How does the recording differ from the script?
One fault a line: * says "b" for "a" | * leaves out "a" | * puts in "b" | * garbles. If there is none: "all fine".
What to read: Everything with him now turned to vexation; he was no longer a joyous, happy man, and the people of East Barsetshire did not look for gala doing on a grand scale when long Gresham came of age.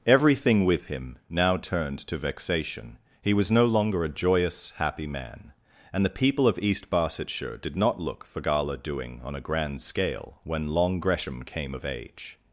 all fine